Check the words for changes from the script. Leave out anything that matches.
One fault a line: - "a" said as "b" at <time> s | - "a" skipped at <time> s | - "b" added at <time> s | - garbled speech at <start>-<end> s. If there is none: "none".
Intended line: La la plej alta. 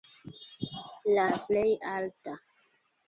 none